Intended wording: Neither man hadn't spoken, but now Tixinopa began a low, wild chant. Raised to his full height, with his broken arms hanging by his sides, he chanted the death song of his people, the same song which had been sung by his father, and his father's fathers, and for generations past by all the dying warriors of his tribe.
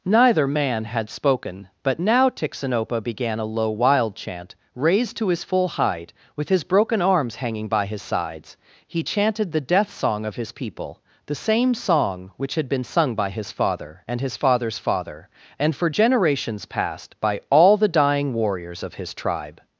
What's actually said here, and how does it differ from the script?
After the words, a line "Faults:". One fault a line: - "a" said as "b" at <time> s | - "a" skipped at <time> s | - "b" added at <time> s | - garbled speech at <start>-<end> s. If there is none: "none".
Neither man had spoken, but now Tixinopa began a low, wild chant. Raised to his full height, with his broken arms hanging by his sides, he chanted the death song of his people, the same song which had been sung by his father, and his father's father, and for generations past by all the dying warriors of his tribe.
Faults:
- "hadn't" said as "had" at 0.8 s
- "fathers" said as "father" at 14.8 s